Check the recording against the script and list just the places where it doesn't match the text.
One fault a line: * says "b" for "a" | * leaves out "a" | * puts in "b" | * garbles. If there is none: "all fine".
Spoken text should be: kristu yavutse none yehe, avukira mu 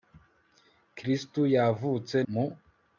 * leaves out "none yehe avukira"